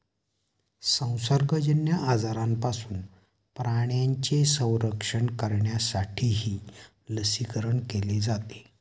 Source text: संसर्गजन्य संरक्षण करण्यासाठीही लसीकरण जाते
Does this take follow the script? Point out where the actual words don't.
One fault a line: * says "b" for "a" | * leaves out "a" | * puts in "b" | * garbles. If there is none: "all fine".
* puts in "आजारांपासून प्राण्यांचे"
* puts in "केले"